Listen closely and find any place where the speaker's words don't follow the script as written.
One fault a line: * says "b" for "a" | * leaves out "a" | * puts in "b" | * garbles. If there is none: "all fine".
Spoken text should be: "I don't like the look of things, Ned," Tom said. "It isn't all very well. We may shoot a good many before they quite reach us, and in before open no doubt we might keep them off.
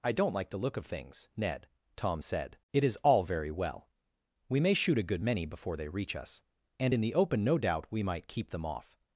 * says "is" for "isn't"
* leaves out "quite"
* says "the" for "before"